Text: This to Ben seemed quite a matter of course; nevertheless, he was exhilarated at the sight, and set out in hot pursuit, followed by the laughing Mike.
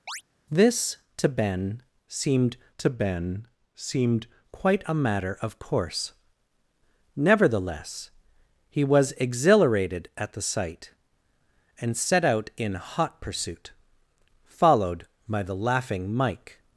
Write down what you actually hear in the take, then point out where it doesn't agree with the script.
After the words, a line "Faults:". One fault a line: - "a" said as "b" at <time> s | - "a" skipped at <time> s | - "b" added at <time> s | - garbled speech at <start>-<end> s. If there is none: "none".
This to Ben seemed to Ben seemed quite a matter of course; nevertheless, he was exhilarated at the sight, and set out in hot pursuit, followed by the laughing Mike.
Faults:
- "to Ben seemed" added at 2.8 s